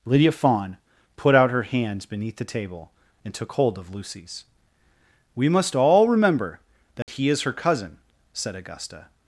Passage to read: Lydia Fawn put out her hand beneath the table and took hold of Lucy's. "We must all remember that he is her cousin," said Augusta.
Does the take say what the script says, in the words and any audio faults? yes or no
no